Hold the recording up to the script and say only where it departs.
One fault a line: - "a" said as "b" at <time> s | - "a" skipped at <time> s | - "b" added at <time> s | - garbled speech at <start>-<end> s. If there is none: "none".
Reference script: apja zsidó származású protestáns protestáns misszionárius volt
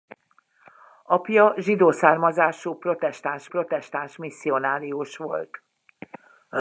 none